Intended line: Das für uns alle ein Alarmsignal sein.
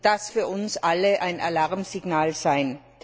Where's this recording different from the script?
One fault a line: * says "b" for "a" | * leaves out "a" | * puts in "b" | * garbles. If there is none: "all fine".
all fine